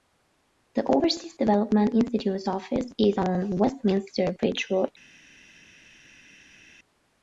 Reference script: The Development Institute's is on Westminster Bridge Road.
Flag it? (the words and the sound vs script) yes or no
yes